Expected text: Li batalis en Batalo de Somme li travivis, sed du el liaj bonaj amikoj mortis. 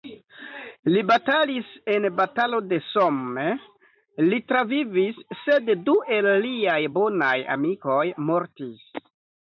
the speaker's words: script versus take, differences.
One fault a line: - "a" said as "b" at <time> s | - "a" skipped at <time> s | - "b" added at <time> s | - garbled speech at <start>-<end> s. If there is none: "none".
none